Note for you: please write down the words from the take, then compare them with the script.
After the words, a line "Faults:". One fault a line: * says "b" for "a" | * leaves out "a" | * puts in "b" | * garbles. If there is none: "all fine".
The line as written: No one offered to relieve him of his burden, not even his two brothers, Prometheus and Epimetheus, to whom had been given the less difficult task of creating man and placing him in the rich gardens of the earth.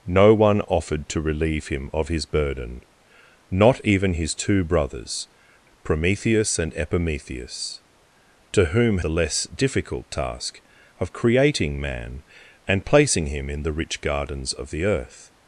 No one offered to relieve him of his burden, not even his two brothers, Prometheus and Epimetheus, to whom the less difficult task of creating man and placing him in the rich gardens of the earth.
Faults:
* leaves out "had been given"